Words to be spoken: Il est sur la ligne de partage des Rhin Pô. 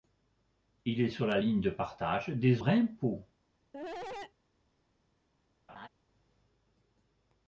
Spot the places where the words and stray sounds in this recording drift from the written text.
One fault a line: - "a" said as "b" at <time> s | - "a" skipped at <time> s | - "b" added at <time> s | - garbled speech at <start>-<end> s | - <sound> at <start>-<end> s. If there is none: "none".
- cough at 3.7-4.3 s
- laugh at 5.7-5.9 s